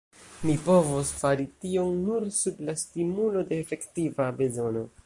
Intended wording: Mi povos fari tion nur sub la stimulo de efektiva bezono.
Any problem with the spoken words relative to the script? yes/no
no